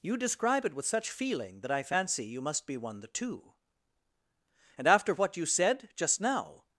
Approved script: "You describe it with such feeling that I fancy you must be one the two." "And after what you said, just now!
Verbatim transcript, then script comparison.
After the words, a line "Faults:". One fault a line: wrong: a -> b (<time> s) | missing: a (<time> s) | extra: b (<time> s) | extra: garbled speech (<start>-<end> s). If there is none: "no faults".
"You describe it with such feeling that I fancy you must be one the two." "And after what you said, just now!
Faults:
no faults